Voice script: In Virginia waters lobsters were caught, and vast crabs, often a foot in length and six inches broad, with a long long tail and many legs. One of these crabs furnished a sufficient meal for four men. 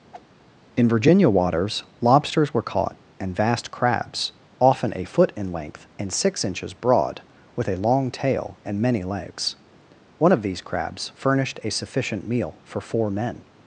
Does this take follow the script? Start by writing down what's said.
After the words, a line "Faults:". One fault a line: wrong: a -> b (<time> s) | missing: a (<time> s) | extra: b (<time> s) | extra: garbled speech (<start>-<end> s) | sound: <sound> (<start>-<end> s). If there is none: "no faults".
In Virginia waters lobsters were caught, and vast crabs, often a foot in length and six inches broad, with a long tail and many legs. One of these crabs furnished a sufficient meal for four men.
Faults:
sound: whoosh (0.1-0.3 s)
missing: long (8.1 s)